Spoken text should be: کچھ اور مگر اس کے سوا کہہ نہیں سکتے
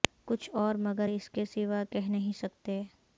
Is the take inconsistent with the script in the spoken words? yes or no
no